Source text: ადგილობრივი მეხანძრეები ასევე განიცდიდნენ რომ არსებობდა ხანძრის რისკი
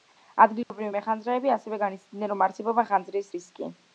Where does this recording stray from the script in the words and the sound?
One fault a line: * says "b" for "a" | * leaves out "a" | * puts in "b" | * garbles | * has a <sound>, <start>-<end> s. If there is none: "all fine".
* has a dropout, 0.6-0.7 s